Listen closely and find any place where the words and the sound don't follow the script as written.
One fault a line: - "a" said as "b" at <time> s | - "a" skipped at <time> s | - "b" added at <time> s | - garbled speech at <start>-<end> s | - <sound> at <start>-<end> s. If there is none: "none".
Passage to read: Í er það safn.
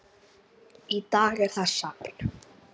- "dag" added at 1.2 s